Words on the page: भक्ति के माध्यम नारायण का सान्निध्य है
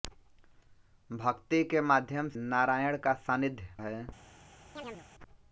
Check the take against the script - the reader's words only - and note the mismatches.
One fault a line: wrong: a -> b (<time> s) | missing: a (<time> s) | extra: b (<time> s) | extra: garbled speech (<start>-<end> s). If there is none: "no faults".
no faults